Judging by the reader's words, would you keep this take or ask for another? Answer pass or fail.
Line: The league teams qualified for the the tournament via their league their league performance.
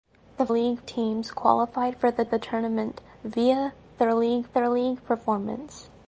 pass